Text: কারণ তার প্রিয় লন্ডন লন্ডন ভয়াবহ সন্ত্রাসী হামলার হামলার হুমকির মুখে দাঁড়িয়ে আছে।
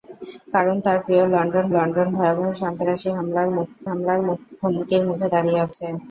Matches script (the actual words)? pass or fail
pass